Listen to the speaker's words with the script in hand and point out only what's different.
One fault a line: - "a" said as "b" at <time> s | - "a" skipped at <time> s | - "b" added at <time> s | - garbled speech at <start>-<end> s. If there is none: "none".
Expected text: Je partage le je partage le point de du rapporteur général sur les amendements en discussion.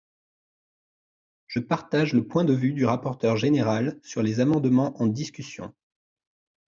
- "je partage le" skipped at 2.3 s
- "vue" added at 2.5 s